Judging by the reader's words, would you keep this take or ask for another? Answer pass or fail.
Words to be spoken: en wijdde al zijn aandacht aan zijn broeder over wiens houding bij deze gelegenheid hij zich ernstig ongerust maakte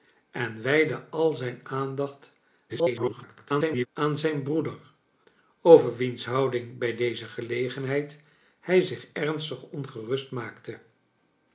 fail